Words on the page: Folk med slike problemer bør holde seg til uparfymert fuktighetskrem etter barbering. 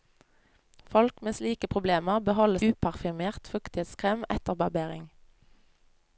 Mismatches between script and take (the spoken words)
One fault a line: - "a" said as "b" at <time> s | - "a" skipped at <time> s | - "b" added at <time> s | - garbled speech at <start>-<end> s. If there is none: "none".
- "seg til" skipped at 2.6 s